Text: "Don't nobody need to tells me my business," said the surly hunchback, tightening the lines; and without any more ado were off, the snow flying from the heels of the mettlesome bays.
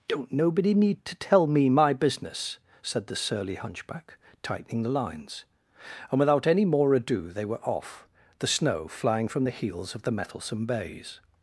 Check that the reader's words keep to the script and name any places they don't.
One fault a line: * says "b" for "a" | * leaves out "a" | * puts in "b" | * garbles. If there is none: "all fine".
* says "tell" for "tells"
* puts in "they"